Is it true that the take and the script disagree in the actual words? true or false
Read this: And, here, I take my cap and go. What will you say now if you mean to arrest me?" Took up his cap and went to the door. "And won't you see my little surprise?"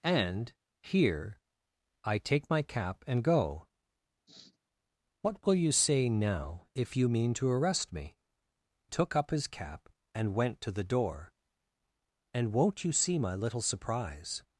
false